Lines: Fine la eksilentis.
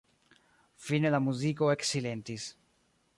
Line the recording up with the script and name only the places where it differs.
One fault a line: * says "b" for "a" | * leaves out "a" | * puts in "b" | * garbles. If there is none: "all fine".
* puts in "muziko"